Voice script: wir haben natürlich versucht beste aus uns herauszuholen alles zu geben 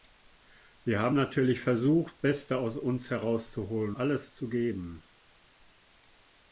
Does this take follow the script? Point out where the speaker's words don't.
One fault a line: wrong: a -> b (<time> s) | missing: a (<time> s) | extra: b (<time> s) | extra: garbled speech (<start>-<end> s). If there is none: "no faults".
no faults